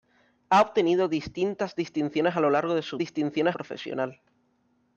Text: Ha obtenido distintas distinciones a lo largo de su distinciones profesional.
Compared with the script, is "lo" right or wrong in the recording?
right